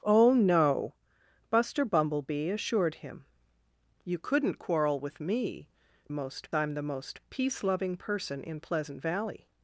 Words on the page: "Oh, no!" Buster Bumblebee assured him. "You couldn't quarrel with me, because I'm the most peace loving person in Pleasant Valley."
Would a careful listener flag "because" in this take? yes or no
yes